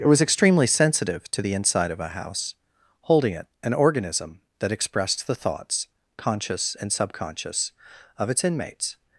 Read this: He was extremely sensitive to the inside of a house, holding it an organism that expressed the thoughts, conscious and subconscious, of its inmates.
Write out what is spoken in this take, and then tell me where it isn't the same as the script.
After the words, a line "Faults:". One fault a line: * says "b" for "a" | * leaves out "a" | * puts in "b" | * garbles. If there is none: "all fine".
It was extremely sensitive to the inside of a house, holding it an organism that expressed the thoughts, conscious and subconscious, of its inmates.
Faults:
* says "It" for "He"